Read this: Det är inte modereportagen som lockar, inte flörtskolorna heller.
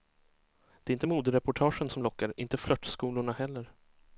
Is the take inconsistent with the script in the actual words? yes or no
no